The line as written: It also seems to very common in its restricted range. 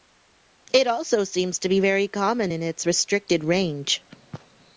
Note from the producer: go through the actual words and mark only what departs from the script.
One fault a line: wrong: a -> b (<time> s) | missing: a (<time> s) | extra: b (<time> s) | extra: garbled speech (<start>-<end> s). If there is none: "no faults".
extra: be (1.7 s)